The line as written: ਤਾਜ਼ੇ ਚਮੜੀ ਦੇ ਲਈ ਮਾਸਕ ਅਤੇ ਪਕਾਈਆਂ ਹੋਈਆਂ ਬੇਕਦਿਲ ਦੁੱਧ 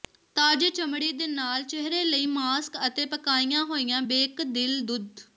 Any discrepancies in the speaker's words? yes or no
yes